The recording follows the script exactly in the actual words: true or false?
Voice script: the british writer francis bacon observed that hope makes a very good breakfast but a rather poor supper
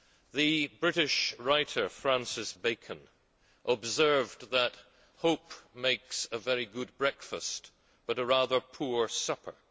true